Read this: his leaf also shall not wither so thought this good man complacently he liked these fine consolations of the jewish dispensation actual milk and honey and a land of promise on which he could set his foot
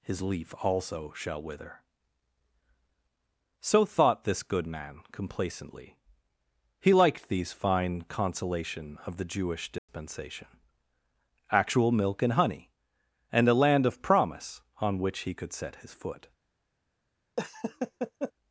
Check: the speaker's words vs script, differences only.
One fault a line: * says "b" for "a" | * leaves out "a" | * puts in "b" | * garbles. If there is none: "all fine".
* leaves out "not"
* says "consolation" for "consolations"